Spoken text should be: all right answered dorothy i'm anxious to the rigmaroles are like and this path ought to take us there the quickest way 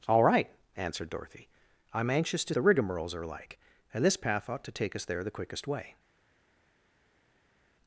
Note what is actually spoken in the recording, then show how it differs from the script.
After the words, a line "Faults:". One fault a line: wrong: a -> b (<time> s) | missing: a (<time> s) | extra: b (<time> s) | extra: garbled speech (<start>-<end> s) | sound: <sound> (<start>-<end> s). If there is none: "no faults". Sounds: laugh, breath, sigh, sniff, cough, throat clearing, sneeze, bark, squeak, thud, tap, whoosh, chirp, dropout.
all right answered dorothy i'm anxious to the rigmaroles are like and this path ought to take us there the quickest way
Faults:
no faults